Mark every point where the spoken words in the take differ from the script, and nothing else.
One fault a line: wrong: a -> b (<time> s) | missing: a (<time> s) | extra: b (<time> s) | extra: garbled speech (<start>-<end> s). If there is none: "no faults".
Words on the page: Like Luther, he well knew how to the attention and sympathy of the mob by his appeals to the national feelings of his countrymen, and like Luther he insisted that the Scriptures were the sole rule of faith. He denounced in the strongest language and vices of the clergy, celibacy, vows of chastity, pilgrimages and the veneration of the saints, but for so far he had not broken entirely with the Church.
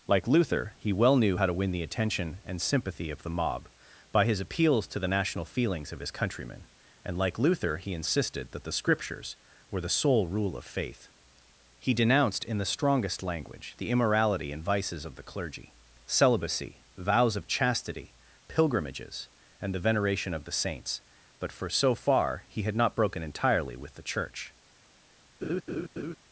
extra: win (1.5 s)
extra: the immorality (13.8 s)